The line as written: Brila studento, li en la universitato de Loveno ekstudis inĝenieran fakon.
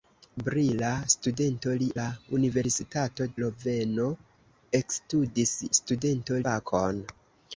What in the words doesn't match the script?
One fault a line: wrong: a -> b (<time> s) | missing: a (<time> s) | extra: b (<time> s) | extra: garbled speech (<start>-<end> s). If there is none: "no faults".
missing: en (1.9 s)
missing: de (3.3 s)
wrong: inĝenieran -> studento (5.8 s)